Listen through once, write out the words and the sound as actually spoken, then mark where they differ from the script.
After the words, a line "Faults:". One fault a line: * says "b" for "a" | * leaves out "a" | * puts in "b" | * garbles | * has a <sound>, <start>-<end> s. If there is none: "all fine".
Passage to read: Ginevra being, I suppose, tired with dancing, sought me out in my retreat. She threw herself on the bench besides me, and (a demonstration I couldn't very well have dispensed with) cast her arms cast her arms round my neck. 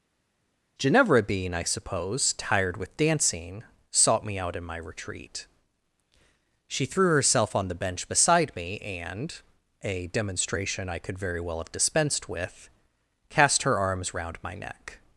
Ginevra being, I suppose, tired with dancing, sought me out in my retreat. She threw herself on the bench beside me, and (a demonstration I could very well have dispensed with) cast her arms round my neck.
Faults:
* says "beside" for "besides"
* says "could" for "couldn't"
* leaves out "cast her arms"